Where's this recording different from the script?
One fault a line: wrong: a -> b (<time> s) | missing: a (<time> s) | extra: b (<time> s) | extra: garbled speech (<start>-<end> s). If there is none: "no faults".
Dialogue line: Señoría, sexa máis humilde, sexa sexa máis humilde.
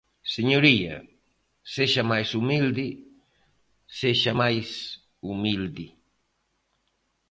missing: sexa (4.3 s)